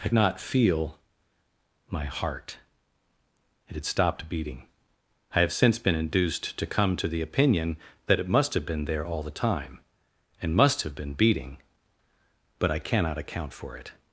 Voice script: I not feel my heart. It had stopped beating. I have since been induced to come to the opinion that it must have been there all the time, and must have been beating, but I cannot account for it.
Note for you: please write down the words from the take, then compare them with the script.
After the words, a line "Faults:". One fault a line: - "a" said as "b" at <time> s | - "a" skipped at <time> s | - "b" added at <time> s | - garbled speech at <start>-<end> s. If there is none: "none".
I not feel my heart. It had stopped beating. I have since been induced to come to the opinion that it must have been there all the time, and must have been beating, but I cannot account for it.
Faults:
none